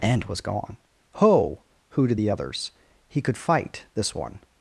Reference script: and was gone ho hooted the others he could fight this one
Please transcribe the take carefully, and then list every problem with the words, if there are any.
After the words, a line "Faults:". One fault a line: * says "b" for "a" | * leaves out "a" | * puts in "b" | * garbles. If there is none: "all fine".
and was gone ho hooted the others he could fight this one
Faults:
all fine